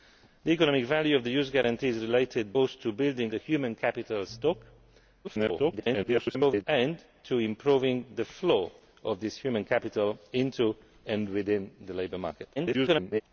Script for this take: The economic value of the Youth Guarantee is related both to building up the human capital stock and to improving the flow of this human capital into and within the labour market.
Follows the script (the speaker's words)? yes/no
no